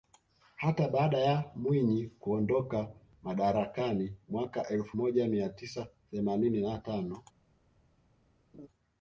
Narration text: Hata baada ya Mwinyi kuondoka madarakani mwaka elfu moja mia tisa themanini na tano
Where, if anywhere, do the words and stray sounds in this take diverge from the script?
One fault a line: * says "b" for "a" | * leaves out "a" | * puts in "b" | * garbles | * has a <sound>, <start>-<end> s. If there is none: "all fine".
* has a laugh, 8.5-8.7 s